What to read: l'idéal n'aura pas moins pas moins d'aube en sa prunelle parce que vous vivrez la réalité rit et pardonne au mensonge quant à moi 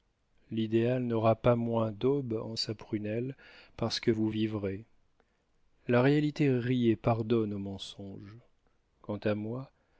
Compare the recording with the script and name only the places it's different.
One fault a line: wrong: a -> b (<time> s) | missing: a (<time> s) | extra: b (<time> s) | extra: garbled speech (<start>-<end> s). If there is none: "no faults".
missing: pas moins (1.9 s)